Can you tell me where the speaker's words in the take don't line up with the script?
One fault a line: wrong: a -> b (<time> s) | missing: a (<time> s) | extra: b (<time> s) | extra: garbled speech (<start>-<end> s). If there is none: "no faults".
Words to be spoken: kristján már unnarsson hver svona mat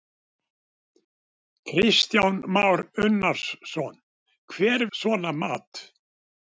no faults